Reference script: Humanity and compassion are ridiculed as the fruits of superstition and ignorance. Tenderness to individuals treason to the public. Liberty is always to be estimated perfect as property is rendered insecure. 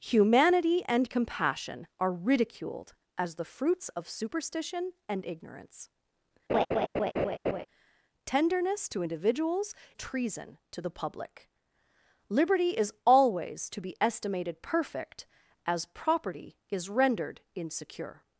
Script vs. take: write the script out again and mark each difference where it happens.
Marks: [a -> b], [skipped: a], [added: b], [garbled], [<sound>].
Humanity and compassion are ridiculed as the fruits of superstition and ignorance. [laugh] Tenderness to individuals treason to the public. Liberty is always to be estimated perfect as property is rendered insecure.